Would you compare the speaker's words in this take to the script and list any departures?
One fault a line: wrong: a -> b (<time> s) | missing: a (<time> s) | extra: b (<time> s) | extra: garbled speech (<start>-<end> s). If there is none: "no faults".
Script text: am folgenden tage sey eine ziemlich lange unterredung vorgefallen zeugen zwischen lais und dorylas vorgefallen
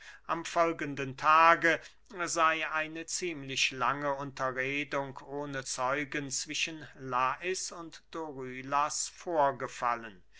wrong: vorgefallen -> ohne (5.2 s)